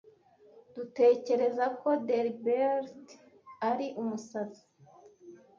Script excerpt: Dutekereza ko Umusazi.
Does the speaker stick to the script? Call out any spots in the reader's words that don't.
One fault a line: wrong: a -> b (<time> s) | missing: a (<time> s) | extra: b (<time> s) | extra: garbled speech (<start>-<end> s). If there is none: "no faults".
extra: Delbert ari (2.1 s)